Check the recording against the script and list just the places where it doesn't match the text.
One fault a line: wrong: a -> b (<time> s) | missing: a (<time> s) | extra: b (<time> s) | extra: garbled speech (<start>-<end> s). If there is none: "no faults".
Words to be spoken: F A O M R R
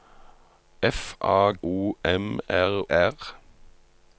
no faults